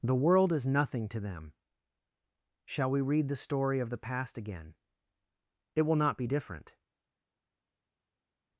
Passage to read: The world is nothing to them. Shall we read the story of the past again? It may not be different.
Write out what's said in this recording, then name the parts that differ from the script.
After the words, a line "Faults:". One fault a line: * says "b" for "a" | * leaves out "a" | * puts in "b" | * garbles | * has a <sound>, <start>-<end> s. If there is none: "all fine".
The world is nothing to them. Shall we read the story of the past again? It will not be different.
Faults:
* says "will" for "may"